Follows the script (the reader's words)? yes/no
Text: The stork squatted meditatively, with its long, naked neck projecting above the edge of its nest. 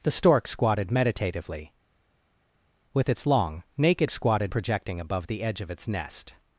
no